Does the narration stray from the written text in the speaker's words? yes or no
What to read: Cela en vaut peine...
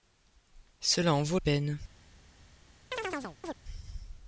no